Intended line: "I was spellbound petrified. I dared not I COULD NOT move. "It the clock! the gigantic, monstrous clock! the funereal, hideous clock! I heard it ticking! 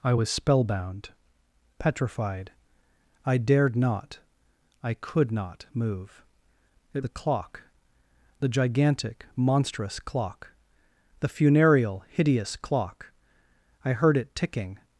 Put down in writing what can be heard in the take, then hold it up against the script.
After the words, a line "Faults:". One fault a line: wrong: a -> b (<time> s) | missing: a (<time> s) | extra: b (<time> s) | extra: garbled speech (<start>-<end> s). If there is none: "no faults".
"I was spellbound petrified. I dared not I COULD NOT move. "It the clock! the gigantic, monstrous clock! the funereal, hideous clock! I heard it ticking!
Faults:
no faults